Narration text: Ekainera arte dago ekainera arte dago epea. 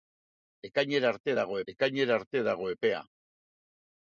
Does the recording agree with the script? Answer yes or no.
yes